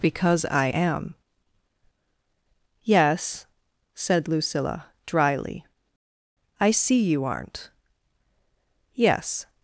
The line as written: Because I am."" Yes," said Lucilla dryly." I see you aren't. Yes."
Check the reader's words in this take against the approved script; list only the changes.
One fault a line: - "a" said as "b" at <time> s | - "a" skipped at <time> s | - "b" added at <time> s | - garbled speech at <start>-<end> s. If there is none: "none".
none